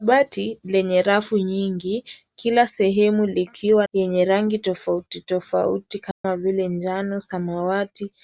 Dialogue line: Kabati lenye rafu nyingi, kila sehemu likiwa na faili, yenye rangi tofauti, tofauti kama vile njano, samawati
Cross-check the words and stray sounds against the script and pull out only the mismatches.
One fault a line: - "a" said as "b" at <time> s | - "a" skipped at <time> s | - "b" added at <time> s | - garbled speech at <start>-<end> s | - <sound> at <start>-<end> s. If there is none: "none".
- "na faili" skipped at 3.9 s
- dropout at 6.1-6.2 s